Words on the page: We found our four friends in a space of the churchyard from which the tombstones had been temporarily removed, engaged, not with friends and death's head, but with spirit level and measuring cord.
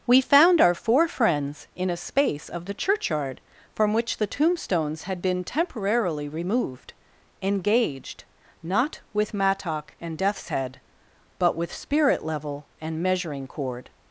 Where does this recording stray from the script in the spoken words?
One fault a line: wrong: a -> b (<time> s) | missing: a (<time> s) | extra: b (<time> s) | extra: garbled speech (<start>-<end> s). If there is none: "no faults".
wrong: friends -> mattock (9.3 s)